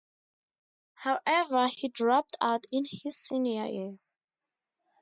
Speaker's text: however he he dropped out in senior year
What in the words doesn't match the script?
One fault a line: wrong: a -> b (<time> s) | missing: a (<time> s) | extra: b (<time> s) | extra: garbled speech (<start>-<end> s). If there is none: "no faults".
missing: he (1.9 s)
extra: his (2.9 s)